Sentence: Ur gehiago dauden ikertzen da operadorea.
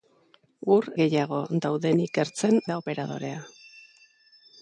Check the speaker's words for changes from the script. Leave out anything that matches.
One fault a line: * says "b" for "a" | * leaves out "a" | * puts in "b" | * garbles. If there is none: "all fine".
all fine